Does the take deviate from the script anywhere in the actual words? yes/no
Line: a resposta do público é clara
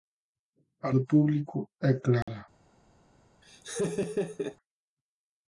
yes